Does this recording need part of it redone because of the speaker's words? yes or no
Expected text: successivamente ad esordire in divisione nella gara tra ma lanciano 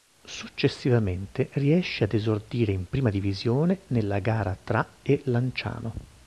yes